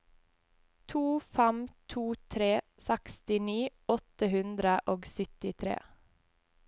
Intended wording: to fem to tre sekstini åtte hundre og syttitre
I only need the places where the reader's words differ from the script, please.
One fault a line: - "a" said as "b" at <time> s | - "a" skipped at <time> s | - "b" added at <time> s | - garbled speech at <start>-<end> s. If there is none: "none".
none